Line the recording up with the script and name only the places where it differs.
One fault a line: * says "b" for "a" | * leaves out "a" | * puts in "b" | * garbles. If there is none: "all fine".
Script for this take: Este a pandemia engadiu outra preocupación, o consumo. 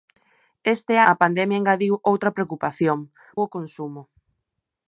all fine